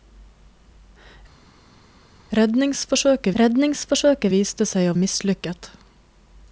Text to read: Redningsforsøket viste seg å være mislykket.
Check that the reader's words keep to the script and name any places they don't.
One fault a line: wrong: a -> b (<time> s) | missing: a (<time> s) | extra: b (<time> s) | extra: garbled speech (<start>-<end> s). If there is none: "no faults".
extra: redningsforsøket (3.4 s)
missing: være (5.0 s)